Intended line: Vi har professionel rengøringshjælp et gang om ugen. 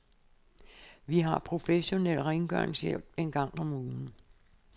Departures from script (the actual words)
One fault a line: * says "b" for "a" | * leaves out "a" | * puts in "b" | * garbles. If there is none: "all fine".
* says "en" for "et"